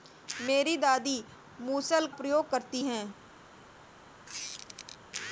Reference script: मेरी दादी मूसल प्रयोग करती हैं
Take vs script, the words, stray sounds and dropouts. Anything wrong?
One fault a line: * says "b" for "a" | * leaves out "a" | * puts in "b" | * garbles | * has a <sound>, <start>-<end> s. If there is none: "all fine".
* has a squeak, 4.3-5.0 s